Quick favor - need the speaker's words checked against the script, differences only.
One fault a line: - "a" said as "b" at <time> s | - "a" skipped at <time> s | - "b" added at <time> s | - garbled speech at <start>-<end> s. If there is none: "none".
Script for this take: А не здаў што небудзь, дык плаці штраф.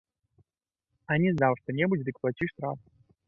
none